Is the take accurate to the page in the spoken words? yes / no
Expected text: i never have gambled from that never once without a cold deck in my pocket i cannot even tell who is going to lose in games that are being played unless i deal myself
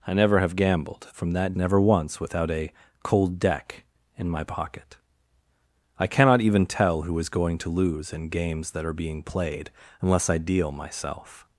yes